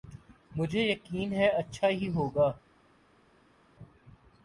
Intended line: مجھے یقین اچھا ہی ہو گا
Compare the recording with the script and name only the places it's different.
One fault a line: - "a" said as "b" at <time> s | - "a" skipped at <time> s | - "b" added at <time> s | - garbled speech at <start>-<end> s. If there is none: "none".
- "ہے" added at 1.3 s